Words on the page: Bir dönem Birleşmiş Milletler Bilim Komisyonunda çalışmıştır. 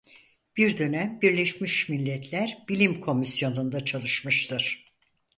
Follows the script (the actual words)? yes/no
yes